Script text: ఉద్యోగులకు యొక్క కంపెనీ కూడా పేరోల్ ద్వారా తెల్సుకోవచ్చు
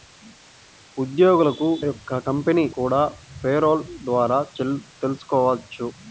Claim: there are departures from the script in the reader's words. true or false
false